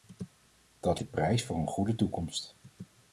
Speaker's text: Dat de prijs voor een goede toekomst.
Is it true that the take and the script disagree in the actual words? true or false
false